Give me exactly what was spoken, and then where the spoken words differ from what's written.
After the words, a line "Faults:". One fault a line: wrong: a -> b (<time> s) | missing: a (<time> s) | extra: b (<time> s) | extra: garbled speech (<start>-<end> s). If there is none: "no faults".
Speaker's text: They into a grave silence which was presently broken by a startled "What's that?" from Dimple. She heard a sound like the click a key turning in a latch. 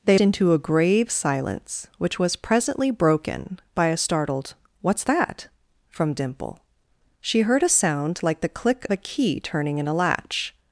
They into a grave silence which was presently broken by a startled "What's that?" from Dimple. She heard a sound like the click a key turning in a latch.
Faults:
no faults